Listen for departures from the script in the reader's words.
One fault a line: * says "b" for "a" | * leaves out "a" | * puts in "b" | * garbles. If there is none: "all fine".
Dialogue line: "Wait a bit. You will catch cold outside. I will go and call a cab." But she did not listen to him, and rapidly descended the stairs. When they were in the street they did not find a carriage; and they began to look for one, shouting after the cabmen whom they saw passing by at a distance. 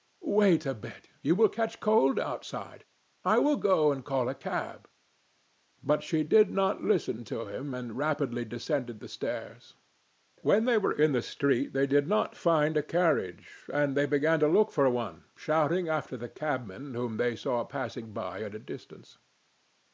all fine